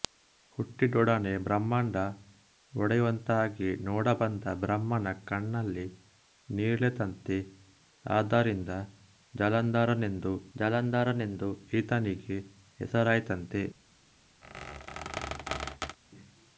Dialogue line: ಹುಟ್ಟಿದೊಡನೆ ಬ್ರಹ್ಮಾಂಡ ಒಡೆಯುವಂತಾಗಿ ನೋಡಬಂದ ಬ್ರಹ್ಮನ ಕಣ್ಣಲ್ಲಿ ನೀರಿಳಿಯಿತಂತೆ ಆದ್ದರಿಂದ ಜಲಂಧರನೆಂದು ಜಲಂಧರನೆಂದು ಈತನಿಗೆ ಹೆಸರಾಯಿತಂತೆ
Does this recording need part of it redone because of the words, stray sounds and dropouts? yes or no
yes